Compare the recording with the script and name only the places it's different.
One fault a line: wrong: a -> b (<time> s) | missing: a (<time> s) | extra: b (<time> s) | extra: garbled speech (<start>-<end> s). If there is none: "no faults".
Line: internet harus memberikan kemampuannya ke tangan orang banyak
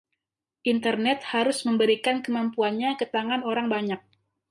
no faults